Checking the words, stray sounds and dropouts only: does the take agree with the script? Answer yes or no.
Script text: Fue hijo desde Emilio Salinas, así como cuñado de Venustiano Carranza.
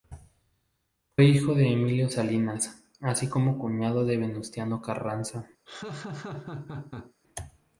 no